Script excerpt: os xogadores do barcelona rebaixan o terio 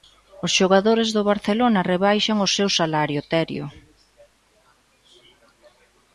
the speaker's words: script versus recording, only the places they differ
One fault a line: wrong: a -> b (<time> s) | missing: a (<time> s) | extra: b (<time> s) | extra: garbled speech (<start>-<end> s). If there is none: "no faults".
extra: seu salario (2.5 s)